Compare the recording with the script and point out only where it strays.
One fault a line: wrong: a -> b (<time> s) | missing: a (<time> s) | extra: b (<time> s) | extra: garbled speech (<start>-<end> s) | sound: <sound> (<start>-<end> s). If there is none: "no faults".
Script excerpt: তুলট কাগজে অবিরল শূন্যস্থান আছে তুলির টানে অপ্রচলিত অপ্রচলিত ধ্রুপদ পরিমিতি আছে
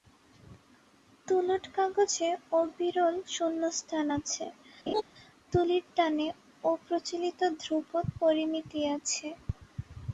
sound: laugh (4.9-5.0 s)
missing: অপ্রচলিত (7.4 s)